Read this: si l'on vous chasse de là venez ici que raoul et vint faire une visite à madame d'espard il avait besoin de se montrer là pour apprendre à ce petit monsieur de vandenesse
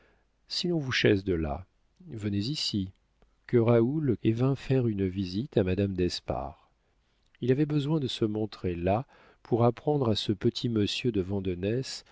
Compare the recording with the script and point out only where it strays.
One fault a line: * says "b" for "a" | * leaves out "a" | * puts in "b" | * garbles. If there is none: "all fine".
all fine